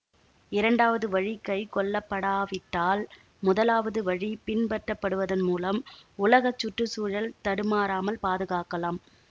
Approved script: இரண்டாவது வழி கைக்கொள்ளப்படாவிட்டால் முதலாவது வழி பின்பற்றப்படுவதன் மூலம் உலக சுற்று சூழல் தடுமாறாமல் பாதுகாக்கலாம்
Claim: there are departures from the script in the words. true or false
false